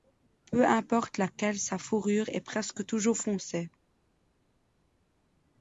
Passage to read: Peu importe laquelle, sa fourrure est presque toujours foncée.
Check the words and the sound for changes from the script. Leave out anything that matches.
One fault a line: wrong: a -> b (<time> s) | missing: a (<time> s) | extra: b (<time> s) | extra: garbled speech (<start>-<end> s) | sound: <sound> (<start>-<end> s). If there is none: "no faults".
no faults